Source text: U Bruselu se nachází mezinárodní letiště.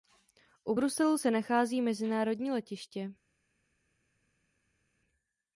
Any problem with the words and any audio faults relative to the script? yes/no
no